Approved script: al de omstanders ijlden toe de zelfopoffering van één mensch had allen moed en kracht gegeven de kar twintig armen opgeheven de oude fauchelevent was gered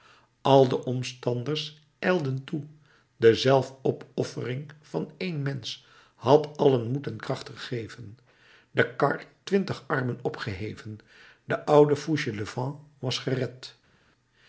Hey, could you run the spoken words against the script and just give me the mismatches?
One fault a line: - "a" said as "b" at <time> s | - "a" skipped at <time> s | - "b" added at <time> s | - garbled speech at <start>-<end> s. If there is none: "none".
none